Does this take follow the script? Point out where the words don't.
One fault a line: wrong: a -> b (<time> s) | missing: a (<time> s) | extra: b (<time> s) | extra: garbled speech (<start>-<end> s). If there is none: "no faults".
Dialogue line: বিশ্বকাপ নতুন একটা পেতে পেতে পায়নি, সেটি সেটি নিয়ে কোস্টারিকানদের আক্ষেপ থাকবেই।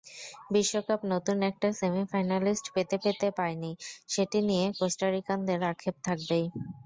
extra: সেমিফাইনালিস্ট (1.8 s)
missing: সেটি (4.4 s)